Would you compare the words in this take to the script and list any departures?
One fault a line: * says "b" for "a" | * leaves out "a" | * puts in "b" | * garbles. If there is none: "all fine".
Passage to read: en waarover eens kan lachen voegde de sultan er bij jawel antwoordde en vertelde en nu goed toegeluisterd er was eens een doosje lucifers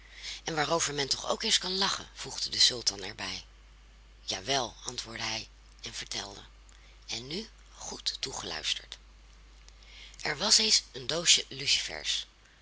* puts in "men toch ook"
* puts in "hij"